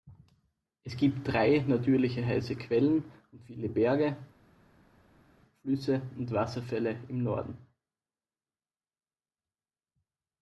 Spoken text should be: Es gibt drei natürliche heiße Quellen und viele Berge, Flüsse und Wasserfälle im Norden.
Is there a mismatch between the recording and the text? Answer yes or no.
no